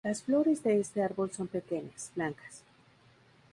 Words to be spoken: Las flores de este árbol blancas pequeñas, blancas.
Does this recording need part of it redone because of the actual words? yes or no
yes